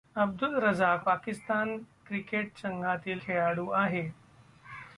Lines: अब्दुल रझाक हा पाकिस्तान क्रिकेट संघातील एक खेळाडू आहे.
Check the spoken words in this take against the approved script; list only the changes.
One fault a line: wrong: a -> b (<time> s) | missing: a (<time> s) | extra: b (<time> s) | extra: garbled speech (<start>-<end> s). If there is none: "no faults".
missing: हा (1.1 s)
missing: एक (3.2 s)